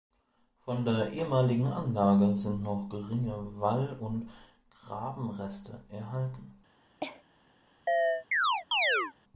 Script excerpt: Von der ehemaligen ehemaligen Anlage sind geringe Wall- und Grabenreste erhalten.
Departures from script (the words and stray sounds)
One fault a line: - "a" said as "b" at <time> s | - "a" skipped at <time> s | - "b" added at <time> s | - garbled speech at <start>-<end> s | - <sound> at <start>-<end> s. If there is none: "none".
- "ehemaligen" skipped at 1.7 s
- "noch" added at 2.6 s
- cough at 7.0-7.2 s
- chirp at 7.9-9.1 s